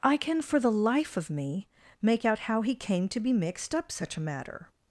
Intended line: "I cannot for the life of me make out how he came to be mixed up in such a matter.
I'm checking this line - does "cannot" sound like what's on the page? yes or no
no